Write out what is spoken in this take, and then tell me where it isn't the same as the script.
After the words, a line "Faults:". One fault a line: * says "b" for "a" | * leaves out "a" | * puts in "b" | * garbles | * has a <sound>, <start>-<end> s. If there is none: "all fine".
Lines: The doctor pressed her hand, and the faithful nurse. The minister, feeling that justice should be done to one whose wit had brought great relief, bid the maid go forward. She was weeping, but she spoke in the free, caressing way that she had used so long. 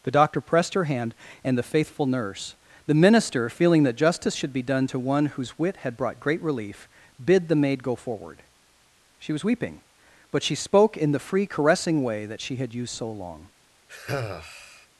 The doctor pressed her hand, and the faithful nurse. The minister, feeling that justice should be done to one whose wit had brought great relief, bid the maid go forward. She was weeping, but she spoke in the free, caressing way that she had used so long.
Faults:
* has a sigh, 13.9-14.9 s